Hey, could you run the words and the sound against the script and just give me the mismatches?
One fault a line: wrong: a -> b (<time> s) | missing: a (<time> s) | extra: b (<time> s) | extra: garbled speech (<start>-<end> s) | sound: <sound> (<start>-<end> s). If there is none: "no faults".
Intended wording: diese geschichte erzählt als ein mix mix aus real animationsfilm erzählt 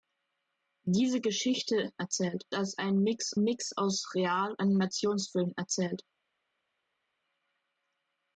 no faults